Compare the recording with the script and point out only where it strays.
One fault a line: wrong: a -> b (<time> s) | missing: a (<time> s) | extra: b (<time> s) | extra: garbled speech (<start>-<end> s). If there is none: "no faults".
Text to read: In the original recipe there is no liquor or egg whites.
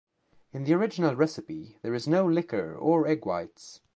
no faults